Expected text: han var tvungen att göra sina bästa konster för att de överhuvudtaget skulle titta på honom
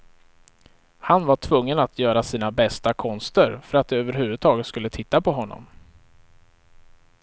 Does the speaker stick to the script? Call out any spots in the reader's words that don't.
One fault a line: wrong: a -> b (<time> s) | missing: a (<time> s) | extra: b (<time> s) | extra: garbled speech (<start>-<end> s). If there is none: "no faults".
no faults